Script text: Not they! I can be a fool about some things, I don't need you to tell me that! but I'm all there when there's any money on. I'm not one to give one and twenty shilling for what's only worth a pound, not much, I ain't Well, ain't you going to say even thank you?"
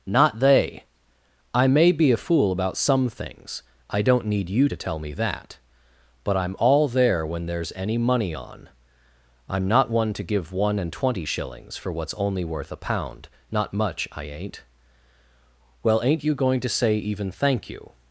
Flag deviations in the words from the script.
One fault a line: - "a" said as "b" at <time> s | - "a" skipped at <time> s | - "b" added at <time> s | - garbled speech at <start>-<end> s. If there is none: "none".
- "can" said as "may" at 1.7 s
- "shilling" said as "shillings" at 11.2 s